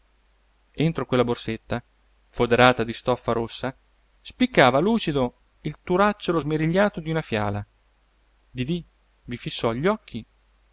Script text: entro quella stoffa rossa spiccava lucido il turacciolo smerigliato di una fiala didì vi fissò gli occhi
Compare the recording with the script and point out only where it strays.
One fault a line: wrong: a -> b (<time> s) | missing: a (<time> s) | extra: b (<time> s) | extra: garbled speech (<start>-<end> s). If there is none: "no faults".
extra: borsetta foderata di (1.2 s)